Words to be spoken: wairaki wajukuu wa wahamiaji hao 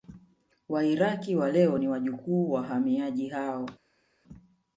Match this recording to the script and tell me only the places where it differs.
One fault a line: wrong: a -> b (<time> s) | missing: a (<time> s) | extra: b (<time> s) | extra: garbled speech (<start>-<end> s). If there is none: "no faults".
extra: wa leo ni (1.4 s)